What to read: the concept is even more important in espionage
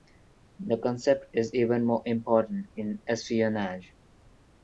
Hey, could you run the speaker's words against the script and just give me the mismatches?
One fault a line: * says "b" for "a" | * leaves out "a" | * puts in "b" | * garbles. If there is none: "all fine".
all fine